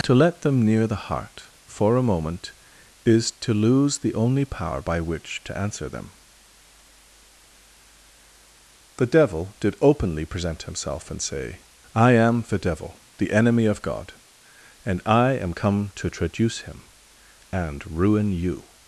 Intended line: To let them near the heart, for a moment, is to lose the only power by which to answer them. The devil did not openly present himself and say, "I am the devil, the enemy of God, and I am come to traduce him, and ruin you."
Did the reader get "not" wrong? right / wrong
wrong